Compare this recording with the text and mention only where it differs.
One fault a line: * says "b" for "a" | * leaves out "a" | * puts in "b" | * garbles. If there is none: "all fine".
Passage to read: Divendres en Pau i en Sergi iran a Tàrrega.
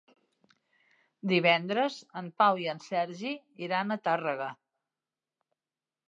all fine